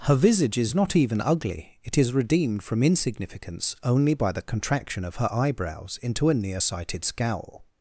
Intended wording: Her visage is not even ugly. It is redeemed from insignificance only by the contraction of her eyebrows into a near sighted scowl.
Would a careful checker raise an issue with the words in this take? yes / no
no